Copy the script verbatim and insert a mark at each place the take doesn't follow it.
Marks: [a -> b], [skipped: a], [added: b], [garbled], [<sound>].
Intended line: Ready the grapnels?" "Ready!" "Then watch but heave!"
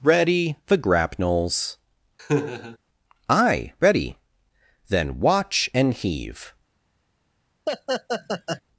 Ready the grapnels?" [laugh] [added: Aye] "Ready!" "Then watch [but -> and] heave!" [laugh]